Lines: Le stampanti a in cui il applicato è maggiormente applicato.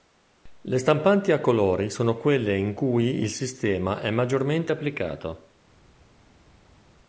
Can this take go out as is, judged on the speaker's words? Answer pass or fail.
fail